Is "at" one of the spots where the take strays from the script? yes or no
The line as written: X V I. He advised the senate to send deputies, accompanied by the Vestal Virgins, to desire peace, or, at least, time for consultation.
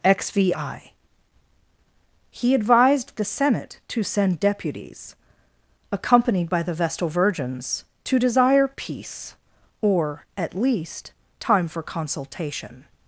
no